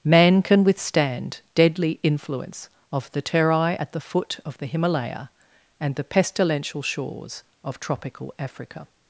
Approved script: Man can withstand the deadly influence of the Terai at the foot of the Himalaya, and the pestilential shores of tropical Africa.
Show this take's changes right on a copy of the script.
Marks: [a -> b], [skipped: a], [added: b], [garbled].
Man can withstand [skipped: the] deadly influence of the Terai at the foot of the Himalaya, and the pestilential shores of tropical Africa.